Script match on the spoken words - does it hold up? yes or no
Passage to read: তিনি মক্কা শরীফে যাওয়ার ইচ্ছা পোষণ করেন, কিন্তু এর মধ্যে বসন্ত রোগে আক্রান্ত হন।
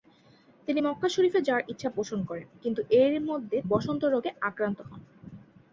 yes